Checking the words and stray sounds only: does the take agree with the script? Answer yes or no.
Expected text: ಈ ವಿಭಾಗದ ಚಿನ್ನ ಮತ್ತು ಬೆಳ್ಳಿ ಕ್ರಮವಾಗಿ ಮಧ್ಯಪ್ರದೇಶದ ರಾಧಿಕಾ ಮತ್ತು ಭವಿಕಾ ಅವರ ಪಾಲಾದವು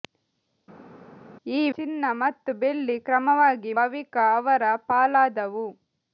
no